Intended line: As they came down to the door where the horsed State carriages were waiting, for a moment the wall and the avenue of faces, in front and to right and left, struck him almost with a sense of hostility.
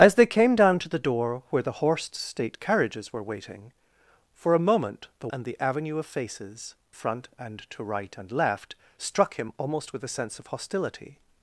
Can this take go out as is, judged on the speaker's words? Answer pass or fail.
fail